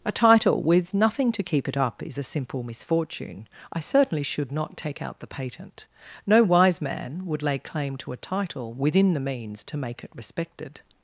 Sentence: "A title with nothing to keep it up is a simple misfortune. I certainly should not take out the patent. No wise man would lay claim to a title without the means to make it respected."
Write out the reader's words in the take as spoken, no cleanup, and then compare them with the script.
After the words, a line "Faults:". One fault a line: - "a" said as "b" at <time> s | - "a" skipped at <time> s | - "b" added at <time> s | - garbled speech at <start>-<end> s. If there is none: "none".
"A title with nothing to keep it up is a simple misfortune. I certainly should not take out the patent. No wise man would lay claim to a title within the means to make it respected."
Faults:
- "without" said as "within" at 8.7 s